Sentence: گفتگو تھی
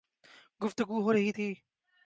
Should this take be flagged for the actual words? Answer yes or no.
yes